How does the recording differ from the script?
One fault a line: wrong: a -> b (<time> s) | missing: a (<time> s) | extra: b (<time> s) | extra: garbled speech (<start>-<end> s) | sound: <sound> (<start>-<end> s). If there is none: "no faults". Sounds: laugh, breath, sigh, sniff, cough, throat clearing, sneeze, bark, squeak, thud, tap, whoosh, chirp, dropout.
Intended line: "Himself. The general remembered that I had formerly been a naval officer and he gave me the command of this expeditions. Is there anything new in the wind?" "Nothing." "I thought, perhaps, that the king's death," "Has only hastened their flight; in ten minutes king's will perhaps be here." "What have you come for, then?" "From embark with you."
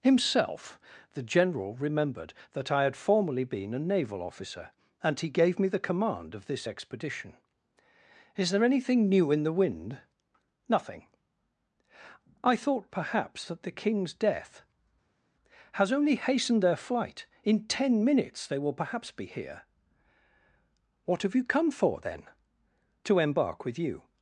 wrong: expeditions -> expedition (6.6 s)
wrong: king's -> they (18.5 s)
wrong: From -> To (23.0 s)